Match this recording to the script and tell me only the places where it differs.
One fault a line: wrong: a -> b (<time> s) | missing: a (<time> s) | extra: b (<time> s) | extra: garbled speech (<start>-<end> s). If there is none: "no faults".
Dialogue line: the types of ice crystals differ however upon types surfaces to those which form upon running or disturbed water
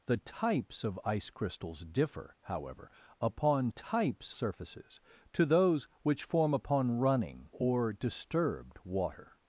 no faults